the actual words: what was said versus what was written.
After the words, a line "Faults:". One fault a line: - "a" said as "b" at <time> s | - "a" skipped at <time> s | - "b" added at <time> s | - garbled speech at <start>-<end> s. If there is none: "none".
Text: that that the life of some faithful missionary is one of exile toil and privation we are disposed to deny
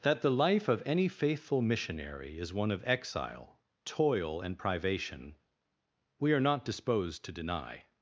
that the life of any faithful missionary is one of exile toil and privation we are not disposed to deny
Faults:
- "that" skipped at 0.2 s
- "some" said as "any" at 0.8 s
- "not" added at 6.4 s